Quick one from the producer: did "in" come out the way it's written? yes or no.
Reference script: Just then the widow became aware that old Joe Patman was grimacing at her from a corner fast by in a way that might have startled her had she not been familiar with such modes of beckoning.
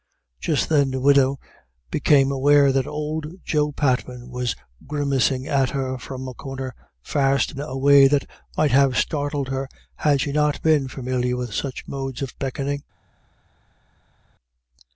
no